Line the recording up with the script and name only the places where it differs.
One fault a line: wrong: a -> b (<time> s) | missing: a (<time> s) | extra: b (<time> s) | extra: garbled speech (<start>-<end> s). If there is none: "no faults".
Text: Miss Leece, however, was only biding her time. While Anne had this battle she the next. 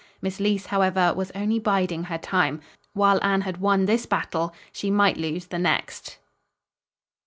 extra: won (3.6 s)
extra: might lose (4.9 s)